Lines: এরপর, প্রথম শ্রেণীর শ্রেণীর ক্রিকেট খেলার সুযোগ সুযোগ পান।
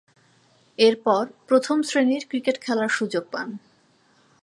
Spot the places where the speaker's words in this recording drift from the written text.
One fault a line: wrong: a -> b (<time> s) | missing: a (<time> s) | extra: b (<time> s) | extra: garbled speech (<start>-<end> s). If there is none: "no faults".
missing: শ্রেণীর (2.2 s)
missing: সুযোগ (3.2 s)